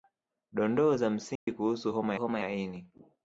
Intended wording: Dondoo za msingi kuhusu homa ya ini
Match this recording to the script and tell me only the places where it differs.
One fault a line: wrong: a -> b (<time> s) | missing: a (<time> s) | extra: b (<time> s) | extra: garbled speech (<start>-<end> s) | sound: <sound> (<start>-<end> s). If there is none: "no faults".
sound: dropout (1.4-1.5 s)
extra: homa (2.2 s)